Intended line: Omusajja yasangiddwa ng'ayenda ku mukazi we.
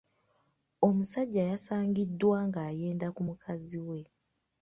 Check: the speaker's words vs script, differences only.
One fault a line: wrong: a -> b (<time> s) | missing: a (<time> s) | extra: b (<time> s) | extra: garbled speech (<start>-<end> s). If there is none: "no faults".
no faults